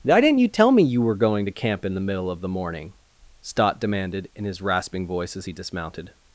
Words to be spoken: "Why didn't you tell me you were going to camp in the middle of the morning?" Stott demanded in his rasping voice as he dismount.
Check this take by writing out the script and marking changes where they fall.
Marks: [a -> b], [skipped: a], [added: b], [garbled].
"Why didn't you tell me you were going to camp in the middle of the morning?" Stott demanded in his rasping voice as he [dismount. -> dismounted]